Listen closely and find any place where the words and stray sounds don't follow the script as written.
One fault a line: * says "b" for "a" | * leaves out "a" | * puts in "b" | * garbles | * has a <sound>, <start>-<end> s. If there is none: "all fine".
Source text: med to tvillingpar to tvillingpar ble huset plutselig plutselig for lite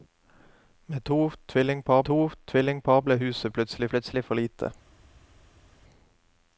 all fine